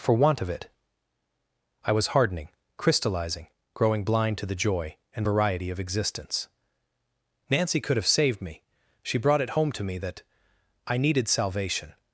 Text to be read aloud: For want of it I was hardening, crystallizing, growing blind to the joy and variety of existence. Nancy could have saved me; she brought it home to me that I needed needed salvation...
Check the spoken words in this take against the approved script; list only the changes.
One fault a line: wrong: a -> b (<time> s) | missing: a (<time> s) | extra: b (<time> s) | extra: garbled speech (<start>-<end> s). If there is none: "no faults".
missing: needed (11.3 s)